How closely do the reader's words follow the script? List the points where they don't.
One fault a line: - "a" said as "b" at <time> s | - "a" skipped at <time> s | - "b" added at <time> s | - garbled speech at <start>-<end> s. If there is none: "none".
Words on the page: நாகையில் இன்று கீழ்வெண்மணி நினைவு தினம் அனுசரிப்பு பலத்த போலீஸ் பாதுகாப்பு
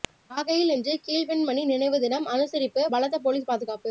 none